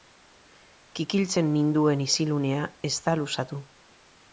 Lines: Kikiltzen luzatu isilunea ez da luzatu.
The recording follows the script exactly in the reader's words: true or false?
false